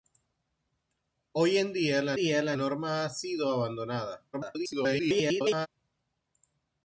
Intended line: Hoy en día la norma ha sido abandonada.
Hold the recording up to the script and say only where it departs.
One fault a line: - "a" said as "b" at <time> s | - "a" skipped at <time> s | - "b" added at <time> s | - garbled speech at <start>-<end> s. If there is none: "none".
- "día la" added at 2.1 s
- garbled speech at 4.3-5.7 s